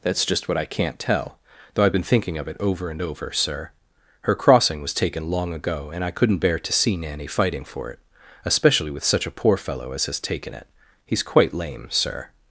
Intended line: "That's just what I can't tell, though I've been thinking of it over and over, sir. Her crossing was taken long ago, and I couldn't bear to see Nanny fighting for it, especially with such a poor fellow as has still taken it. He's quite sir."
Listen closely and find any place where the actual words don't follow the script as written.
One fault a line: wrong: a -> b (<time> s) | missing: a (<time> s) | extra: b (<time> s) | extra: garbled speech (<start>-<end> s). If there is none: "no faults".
missing: still (10.2 s)
extra: lame (11.5 s)